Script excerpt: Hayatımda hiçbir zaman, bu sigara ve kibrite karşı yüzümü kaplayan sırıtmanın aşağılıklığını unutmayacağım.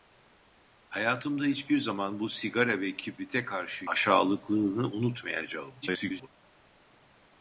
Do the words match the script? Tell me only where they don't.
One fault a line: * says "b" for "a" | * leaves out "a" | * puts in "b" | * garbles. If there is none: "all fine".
* leaves out "yüzümü kaplayan sırıtmanın"
* garbles